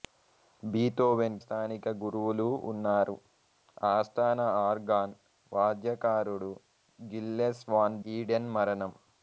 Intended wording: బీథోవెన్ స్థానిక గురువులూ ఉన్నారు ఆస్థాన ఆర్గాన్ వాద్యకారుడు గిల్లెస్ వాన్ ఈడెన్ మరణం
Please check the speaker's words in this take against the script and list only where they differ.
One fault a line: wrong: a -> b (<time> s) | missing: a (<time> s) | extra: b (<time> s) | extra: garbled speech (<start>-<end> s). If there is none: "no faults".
no faults